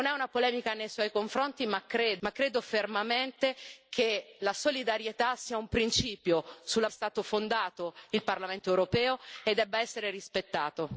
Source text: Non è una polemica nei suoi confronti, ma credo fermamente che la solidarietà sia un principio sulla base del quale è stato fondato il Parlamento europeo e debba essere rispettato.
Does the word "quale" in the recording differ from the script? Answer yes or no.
yes